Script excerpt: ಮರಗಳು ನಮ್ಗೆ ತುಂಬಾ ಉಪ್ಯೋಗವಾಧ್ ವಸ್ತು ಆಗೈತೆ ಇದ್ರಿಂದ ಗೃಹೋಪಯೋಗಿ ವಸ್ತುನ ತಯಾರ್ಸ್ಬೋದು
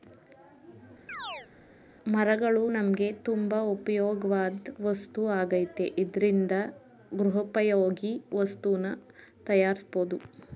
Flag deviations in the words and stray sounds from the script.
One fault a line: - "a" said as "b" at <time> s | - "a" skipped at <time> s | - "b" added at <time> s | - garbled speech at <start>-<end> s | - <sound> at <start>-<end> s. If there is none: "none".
- chirp at 1.1-1.5 s